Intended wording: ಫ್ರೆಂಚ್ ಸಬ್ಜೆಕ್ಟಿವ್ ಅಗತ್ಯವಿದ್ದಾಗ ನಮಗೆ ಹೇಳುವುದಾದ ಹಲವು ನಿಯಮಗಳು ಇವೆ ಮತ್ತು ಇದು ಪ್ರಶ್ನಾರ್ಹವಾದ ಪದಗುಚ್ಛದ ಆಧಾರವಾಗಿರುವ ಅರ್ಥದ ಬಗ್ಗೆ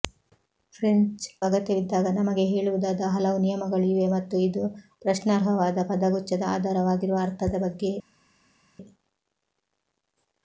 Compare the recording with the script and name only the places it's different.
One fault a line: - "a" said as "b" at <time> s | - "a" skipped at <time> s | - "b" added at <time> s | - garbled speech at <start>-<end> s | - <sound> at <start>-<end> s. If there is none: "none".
- "ಸಬ್ಜೆಕ್ಟಿವ್" skipped at 1.2 s